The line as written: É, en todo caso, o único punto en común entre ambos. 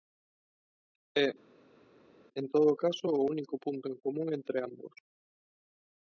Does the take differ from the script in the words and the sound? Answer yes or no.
no